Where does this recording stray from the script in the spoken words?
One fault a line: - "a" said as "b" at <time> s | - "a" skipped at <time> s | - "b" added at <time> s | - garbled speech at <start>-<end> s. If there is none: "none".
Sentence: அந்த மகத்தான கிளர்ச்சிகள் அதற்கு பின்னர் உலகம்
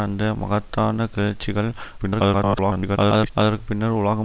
- garbled speech at 2.0-3.3 s